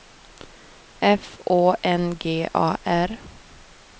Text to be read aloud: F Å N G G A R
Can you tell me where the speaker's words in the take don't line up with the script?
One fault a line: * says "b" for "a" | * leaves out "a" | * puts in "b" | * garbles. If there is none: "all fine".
* leaves out "G"